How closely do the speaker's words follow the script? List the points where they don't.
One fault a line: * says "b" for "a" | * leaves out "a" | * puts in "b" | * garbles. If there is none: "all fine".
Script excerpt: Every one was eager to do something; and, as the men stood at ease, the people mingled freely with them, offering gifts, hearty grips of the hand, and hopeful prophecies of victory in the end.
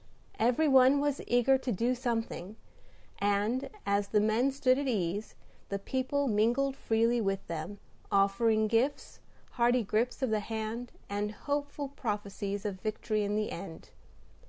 all fine